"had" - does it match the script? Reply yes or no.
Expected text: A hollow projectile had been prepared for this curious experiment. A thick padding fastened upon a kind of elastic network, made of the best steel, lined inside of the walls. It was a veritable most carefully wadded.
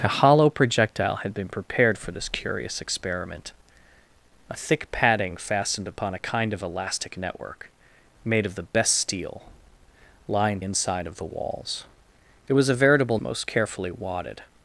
yes